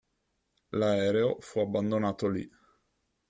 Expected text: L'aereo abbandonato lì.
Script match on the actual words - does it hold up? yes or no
no